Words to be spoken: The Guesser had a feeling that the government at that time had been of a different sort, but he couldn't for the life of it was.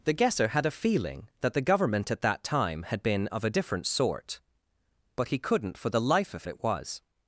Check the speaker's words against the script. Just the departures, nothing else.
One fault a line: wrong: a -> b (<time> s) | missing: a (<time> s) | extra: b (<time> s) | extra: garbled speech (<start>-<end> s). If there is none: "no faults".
no faults